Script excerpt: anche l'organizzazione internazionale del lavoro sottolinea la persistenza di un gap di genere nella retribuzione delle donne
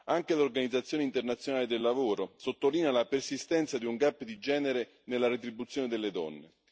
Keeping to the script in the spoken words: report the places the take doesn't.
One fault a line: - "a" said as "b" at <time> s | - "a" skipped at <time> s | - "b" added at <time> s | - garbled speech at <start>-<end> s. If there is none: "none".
none